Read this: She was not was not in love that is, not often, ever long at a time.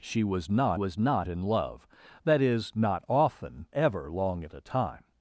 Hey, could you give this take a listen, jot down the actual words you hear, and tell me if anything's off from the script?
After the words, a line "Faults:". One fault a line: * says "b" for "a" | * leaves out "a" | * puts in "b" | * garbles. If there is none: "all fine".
She was not was not in love that is, not often, ever long at a time.
Faults:
all fine